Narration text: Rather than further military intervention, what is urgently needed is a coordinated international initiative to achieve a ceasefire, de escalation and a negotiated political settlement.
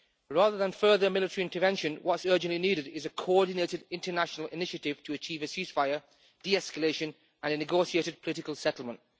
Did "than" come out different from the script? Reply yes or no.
no